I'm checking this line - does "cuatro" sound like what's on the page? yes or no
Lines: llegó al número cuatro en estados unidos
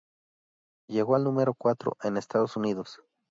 yes